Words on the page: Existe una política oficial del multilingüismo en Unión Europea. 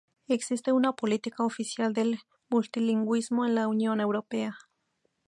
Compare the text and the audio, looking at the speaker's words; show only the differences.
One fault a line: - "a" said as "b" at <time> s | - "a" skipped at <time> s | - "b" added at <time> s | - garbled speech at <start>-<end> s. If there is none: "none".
- "la" added at 3.5 s